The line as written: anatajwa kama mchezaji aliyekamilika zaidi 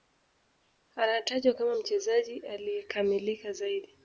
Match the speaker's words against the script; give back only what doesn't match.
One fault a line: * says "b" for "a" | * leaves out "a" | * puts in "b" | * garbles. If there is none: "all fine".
all fine